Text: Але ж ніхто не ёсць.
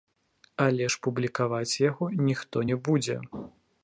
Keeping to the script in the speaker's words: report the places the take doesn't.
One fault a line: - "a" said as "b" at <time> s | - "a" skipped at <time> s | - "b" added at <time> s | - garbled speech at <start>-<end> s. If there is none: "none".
- "публікаваць яго" added at 1.1 s
- "ёсць" said as "будзе" at 2.9 s